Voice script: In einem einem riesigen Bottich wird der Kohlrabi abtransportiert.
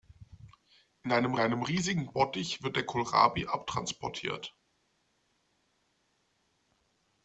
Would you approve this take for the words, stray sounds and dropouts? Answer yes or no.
yes